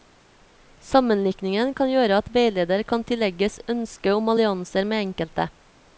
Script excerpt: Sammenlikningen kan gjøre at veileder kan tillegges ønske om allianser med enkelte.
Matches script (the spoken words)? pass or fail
pass